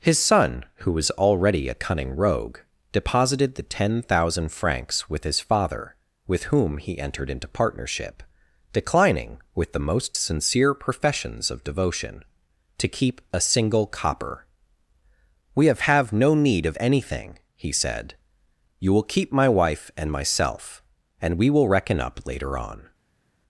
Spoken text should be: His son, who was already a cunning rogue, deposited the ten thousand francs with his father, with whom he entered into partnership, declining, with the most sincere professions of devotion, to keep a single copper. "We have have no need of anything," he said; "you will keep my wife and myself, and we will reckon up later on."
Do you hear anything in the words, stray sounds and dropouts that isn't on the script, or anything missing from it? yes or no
no